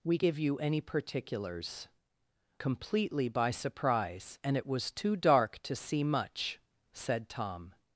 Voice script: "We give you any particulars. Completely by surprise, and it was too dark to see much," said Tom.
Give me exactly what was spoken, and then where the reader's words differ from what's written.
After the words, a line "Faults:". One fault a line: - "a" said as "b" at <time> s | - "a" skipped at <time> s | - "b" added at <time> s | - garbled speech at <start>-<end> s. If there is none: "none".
"We give you any particulars. Completely by surprise, and it was too dark to see much," said Tom.
Faults:
none